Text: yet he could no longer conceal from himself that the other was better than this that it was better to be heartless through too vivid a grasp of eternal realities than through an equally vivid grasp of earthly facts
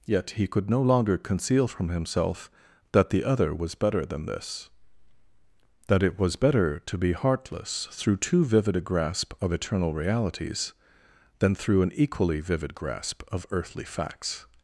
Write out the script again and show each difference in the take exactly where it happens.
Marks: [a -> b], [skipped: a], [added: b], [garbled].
yet he could no longer conceal from himself that the other was better than this that it was better to be heartless through too vivid a grasp of eternal realities than through an equally vivid grasp of earthly facts